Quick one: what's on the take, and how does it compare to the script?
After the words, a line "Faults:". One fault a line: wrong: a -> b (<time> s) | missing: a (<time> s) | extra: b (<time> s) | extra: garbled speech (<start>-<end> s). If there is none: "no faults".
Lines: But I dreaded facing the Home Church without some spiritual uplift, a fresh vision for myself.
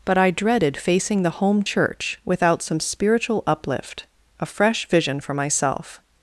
But I dreaded facing the Home Church without some spiritual uplift, a fresh vision for myself.
Faults:
no faults